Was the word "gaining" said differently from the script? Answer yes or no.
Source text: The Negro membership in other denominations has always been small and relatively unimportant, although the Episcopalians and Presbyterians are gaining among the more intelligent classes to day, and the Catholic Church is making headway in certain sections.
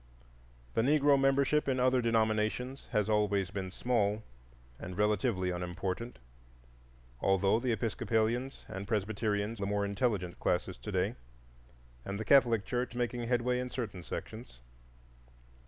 yes